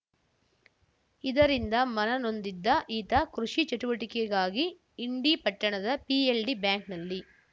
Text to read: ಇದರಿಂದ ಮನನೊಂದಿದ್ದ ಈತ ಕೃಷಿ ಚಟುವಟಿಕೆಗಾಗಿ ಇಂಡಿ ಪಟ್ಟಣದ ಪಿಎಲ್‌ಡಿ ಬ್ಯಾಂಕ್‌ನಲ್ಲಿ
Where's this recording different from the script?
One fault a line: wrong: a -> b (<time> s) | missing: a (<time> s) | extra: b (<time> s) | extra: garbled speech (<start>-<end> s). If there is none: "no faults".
no faults